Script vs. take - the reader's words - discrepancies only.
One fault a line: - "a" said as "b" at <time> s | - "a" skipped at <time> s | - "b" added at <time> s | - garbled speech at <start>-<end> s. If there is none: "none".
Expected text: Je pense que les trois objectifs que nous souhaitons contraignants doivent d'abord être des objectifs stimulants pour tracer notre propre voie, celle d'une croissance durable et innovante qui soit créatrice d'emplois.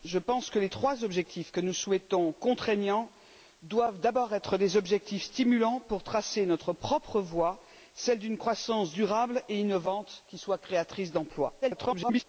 - garbled speech at 11.6-12.2 s